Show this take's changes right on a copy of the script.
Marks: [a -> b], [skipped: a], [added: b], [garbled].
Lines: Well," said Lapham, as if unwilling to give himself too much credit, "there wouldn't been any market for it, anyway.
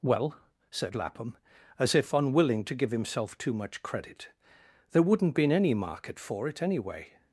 Well," said Lapham, as if unwilling to give himself too much credit, "there wouldn't been any market for it, anyway.